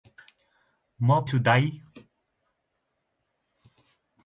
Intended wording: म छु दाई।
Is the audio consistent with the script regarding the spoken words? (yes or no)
yes